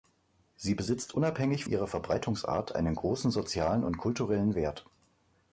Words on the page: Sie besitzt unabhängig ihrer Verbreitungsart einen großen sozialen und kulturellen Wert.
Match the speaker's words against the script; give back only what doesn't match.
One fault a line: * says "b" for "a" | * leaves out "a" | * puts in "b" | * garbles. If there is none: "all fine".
all fine